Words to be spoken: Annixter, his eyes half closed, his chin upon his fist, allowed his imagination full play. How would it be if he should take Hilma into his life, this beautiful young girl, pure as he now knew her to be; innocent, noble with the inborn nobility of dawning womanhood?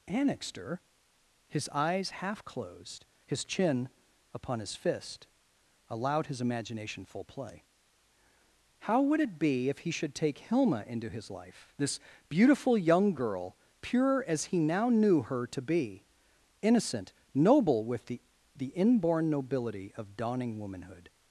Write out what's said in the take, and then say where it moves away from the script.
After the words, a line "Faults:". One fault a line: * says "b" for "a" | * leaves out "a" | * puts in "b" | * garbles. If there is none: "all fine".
Annixter, his eyes half closed, his chin upon his fist, allowed his imagination full play. How would it be if he should take Hilma into his life, this beautiful young girl, pure as he now knew her to be; innocent, noble with the the inborn nobility of dawning womanhood?
Faults:
* puts in "the"